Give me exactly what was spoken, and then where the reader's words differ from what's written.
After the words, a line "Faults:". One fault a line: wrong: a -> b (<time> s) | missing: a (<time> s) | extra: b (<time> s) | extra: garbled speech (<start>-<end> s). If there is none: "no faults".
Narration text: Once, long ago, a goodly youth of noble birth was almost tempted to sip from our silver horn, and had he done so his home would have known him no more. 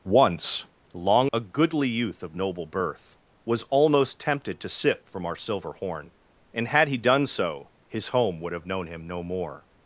Once, long a goodly youth of noble birth was almost tempted to sip from our silver horn, and had he done so his home would have known him no more.
Faults:
missing: ago (1.3 s)